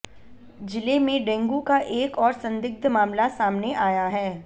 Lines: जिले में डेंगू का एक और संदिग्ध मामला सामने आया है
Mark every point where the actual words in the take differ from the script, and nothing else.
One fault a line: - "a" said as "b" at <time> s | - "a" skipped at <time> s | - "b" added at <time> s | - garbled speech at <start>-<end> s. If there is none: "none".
none